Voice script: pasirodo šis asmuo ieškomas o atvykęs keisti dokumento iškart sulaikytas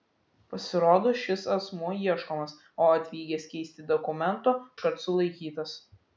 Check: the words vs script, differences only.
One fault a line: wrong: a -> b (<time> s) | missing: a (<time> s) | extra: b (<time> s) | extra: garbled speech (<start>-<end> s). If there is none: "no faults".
no faults